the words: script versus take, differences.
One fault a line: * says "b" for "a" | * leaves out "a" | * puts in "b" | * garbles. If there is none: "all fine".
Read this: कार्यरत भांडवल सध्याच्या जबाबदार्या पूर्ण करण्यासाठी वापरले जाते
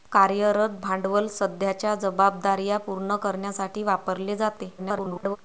* garbles